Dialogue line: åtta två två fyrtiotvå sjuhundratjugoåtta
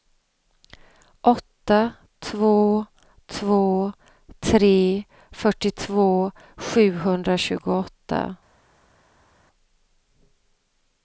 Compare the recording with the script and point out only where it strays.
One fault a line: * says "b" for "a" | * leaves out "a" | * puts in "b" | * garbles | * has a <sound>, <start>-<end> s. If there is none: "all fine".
* puts in "tre"